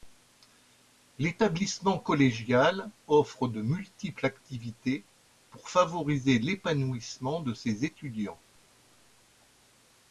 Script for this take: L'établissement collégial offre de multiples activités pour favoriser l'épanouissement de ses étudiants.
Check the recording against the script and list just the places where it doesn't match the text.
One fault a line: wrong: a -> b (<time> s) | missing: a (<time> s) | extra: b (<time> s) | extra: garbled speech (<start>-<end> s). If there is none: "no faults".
no faults